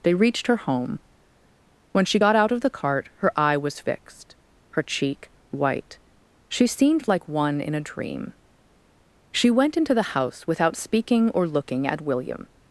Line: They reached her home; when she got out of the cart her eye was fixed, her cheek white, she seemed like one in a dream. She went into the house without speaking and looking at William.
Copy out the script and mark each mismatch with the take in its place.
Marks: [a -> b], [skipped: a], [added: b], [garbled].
They reached her home; when she got out of the cart her eye was fixed, her cheek white, she seemed like one in a dream. She went into the house without speaking [and -> or] looking at William.